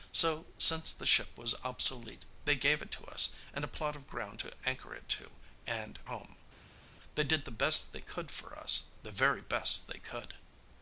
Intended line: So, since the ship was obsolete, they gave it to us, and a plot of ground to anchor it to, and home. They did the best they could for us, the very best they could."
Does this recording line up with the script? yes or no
yes